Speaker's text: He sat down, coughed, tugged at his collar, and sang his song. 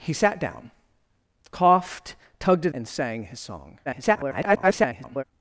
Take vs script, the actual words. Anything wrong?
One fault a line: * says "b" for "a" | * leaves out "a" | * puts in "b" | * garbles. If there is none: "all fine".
* leaves out "his collar"
* garbles